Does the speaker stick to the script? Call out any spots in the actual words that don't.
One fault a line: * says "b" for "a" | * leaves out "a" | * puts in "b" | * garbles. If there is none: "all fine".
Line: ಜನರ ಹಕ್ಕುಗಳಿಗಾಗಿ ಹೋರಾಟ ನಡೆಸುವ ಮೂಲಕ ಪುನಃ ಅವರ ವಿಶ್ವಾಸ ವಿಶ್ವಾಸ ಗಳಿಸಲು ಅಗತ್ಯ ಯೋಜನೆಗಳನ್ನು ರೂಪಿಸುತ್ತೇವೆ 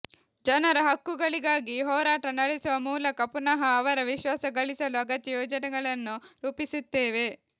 * leaves out "ವಿಶ್ವಾಸ"